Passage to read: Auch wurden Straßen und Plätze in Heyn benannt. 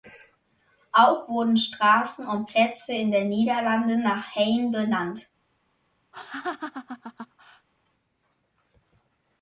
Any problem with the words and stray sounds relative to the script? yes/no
yes